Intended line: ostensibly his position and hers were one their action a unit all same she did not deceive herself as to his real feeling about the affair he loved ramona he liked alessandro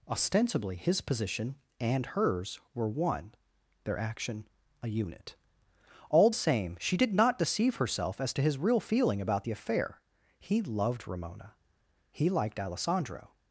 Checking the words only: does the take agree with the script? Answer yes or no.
yes